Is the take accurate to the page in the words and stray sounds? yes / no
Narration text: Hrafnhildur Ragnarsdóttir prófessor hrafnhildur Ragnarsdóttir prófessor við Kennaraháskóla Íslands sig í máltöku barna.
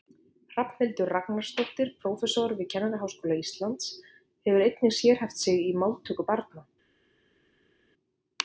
no